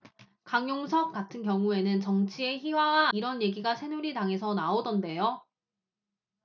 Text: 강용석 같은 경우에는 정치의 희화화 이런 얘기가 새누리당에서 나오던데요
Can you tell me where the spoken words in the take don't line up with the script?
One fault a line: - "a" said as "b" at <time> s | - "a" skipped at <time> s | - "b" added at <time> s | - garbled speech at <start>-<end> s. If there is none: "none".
none